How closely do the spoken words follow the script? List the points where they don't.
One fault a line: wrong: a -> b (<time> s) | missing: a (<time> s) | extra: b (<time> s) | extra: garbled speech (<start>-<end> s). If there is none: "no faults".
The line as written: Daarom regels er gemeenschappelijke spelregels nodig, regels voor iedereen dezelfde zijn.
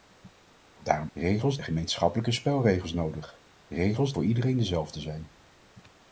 no faults